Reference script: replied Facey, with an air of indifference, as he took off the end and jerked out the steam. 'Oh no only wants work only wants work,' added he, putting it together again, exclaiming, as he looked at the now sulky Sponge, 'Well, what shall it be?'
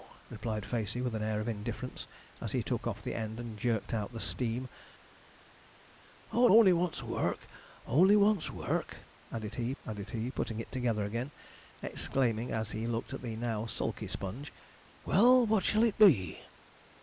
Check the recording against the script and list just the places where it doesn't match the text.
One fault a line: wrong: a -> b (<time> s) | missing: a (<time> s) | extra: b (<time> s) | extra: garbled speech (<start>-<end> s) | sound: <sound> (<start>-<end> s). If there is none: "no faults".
missing: no (6.5 s)
extra: added he (9.8 s)